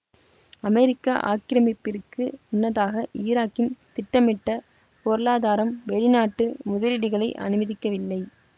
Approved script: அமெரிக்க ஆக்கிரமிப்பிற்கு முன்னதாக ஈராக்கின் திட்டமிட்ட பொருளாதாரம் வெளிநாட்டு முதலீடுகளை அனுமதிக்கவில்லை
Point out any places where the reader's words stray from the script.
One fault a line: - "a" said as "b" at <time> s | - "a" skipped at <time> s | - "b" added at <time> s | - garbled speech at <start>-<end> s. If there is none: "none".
none